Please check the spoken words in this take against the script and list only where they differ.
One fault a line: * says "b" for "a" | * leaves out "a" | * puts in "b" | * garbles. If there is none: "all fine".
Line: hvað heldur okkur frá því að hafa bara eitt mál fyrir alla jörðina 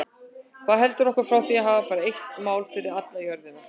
all fine